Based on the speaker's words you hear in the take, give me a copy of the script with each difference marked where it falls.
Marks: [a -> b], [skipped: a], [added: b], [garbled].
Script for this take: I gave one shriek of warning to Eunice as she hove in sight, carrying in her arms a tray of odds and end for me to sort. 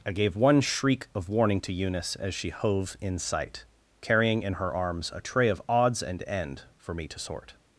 I gave one shriek of warning to Eunice as she hove in sight, carrying in her arms a tray of odds and end for me to sort.